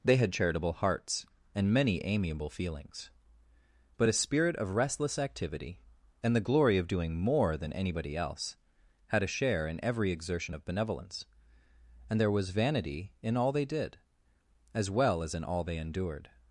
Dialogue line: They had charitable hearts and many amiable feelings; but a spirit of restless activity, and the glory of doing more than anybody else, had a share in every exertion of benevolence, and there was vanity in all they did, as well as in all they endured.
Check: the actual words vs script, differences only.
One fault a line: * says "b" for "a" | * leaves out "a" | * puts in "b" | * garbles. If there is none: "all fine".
all fine